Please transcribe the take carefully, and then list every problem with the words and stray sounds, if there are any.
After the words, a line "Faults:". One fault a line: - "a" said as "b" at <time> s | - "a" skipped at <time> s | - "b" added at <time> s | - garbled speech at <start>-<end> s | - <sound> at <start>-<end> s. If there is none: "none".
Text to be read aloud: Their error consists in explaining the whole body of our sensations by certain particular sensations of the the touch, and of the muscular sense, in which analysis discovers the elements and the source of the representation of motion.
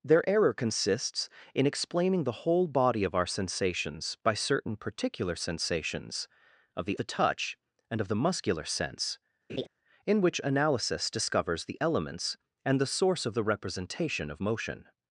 Their error consists in explaining the whole body of our sensations by certain particular sensations of the the touch, and of the muscular sense, in which analysis discovers the elements and the source of the representation of motion.
Faults:
- laugh at 9.5-9.7 s